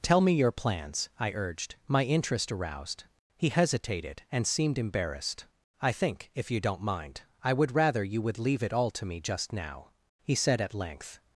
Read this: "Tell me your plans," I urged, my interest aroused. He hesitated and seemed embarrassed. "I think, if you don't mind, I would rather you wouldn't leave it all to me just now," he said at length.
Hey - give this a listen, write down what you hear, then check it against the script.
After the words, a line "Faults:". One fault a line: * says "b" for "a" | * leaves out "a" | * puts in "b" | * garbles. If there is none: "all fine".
"Tell me your plans," I urged, my interest aroused. He hesitated and seemed embarrassed. "I think, if you don't mind, I would rather you would leave it all to me just now," he said at length.
Faults:
* says "would" for "wouldn't"